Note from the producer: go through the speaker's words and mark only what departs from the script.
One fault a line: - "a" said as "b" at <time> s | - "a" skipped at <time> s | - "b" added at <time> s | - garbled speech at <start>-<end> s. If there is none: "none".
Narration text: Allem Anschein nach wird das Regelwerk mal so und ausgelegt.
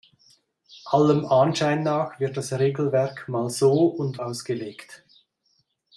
none